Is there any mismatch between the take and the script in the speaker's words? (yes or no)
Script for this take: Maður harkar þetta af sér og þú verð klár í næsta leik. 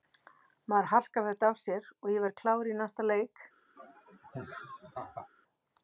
yes